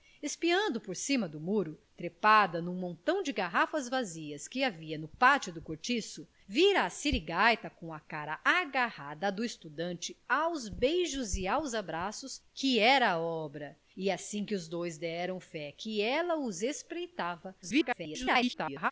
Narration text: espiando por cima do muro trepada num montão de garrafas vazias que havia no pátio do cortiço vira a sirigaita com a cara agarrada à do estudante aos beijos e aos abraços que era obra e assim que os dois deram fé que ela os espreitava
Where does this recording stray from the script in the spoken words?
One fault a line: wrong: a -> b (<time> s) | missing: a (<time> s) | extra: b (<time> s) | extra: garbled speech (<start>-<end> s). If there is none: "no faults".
extra: garbled speech (17.6-18.9 s)